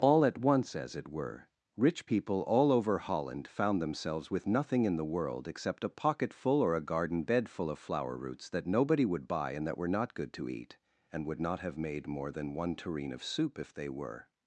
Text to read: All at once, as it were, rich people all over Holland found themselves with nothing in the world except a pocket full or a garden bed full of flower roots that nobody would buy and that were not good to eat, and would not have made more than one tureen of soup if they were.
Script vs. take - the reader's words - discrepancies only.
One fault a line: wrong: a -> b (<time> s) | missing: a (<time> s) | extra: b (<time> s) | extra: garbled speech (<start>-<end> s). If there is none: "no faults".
no faults